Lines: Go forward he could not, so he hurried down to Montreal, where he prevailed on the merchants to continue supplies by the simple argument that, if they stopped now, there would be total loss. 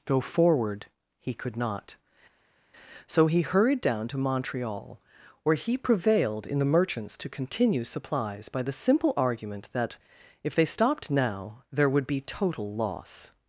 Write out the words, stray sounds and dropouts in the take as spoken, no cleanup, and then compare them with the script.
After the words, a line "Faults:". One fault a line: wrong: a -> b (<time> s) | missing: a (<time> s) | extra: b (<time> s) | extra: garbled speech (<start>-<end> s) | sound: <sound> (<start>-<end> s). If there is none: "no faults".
Go forward he could not, so he hurried down to Montreal, where he prevailed in the merchants to continue supplies by the simple argument that, if they stopped now, there would be total loss.
Faults:
wrong: on -> in (6.5 s)